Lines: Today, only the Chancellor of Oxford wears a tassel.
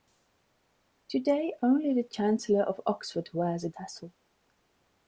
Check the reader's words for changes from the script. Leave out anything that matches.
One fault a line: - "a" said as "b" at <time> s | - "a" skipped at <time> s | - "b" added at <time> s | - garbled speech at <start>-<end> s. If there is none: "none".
none